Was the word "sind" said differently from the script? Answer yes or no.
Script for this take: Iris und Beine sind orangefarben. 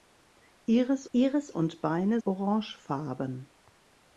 yes